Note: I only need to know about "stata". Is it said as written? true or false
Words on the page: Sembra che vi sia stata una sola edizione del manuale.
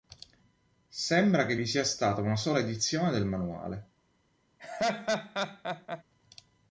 true